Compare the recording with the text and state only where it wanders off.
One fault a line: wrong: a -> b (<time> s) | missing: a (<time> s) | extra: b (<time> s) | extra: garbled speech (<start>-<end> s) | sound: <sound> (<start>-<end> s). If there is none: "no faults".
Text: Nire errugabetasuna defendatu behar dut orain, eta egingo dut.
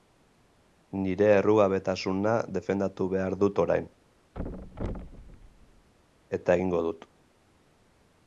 sound: thud (4.3-5.9 s)